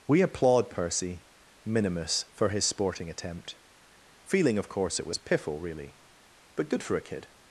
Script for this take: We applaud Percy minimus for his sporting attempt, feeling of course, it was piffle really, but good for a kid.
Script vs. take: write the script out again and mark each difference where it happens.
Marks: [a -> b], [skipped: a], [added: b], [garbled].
We applaud Percy minimus for his sporting attempt, feeling of course, it was piffle really, but good for a kid.